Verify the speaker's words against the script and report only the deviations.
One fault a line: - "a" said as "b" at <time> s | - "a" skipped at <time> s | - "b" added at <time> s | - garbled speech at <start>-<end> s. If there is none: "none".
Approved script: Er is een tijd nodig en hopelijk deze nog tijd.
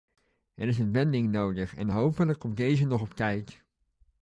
- "tijd" said as "wending" at 0.9 s
- "komt" added at 2.4 s
- "op" added at 3.0 s